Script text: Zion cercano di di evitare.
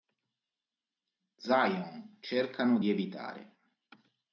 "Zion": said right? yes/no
yes